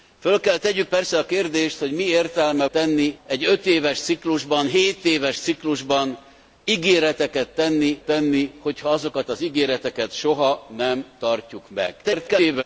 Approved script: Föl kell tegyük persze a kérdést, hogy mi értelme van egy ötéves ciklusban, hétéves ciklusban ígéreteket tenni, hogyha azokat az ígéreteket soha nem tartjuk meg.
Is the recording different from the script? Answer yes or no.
yes